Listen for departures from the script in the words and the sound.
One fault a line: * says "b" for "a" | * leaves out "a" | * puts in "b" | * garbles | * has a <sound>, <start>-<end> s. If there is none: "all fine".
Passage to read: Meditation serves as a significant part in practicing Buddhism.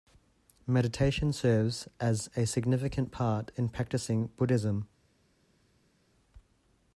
all fine